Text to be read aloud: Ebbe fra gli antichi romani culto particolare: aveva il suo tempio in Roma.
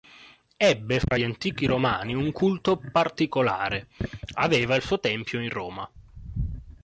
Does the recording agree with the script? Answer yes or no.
no